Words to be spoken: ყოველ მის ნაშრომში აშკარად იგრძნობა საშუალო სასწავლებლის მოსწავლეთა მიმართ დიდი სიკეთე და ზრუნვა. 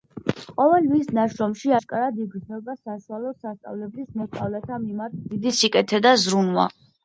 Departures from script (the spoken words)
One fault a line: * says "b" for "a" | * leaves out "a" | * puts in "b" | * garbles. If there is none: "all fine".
all fine